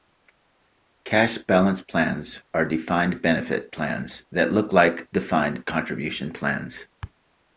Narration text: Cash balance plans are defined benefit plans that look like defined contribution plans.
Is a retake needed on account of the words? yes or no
no